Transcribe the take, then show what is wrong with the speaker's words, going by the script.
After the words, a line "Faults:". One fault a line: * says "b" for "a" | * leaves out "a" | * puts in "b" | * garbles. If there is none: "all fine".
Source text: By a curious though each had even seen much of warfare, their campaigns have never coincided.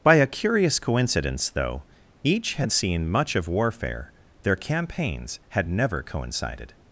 By a curious coincidence, though each had seen much of warfare, their campaigns had never coincided.
Faults:
* puts in "coincidence"
* leaves out "even"
* says "had" for "have"